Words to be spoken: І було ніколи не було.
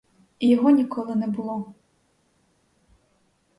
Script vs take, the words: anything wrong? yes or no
yes